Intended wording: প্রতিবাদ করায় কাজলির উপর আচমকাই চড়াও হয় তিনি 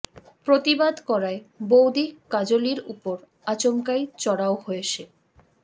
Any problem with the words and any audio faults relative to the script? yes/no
yes